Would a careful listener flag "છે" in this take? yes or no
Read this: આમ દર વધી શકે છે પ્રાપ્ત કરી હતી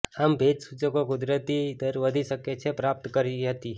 no